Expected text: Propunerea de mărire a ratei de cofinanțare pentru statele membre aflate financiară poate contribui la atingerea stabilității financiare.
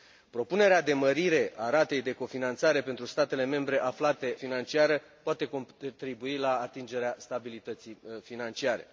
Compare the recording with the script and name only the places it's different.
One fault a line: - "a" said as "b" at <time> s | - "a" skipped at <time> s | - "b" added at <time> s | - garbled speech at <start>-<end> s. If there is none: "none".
none